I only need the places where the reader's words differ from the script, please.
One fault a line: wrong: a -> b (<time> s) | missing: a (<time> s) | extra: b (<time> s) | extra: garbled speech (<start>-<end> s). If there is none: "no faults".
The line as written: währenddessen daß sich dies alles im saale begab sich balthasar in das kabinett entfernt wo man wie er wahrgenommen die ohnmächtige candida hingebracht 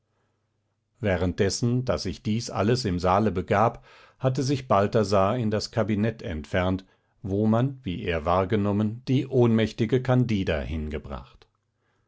extra: hatte (4.2 s)